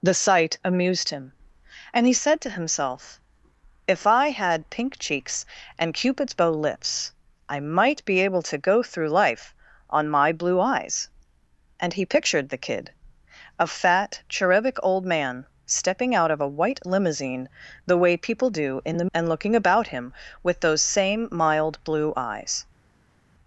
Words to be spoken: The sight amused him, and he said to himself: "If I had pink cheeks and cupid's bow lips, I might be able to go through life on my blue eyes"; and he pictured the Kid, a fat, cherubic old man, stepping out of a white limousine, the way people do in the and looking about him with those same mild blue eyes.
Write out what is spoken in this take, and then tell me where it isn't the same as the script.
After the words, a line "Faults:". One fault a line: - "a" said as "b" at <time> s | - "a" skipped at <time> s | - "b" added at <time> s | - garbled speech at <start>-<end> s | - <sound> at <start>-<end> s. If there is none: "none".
The sight amused him, and he said to himself: "If I had pink cheeks and cupid's bow lips, I might be able to go through life on my blue eyes"; and he pictured the Kid, a fat, cherubic old man, stepping out of a white limousine, the way people do in the and looking about him with those same mild blue eyes.
Faults:
none